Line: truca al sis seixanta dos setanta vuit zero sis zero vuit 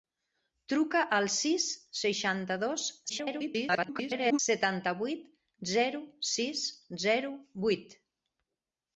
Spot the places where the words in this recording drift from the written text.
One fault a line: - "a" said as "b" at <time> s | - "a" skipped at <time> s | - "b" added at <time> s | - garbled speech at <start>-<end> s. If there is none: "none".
- garbled speech at 3.1-4.4 s